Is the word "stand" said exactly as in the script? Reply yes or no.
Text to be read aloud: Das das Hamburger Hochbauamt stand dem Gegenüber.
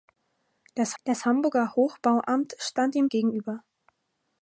yes